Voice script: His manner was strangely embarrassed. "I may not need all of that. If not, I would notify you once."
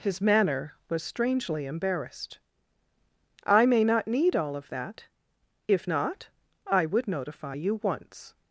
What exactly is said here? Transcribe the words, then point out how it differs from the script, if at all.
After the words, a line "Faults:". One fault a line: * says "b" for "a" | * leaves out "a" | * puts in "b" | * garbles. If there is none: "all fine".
His manner was strangely embarrassed. "I may not need all of that. If not, I would notify you once."
Faults:
all fine